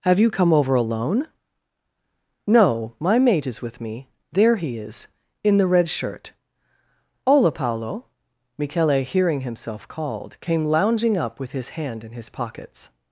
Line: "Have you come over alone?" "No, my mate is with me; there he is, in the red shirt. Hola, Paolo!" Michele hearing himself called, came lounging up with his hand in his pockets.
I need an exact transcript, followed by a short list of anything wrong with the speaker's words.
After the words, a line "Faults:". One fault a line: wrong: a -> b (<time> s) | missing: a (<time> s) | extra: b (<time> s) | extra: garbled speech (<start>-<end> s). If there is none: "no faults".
"Have you come over alone?" "No, my mate is with me; there he is, in the red shirt. Hola, Paolo!" Michele hearing himself called, came lounging up with his hand in his pockets.
Faults:
no faults